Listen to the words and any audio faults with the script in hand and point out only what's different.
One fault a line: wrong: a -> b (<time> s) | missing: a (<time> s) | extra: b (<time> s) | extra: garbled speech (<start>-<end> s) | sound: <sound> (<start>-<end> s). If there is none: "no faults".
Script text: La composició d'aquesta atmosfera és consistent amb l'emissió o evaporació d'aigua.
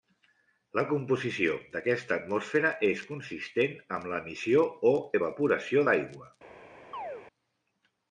sound: chirp (6.9-7.2 s)